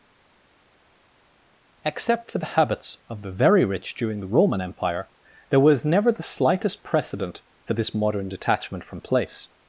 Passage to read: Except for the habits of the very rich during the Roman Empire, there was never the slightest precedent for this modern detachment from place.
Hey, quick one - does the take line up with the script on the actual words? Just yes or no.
yes